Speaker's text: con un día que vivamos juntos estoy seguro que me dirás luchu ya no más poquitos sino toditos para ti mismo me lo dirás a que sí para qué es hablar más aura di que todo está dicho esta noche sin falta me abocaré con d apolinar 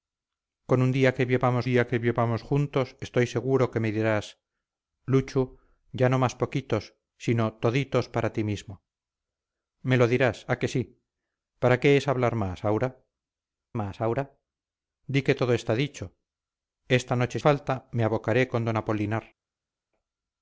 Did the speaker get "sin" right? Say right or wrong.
wrong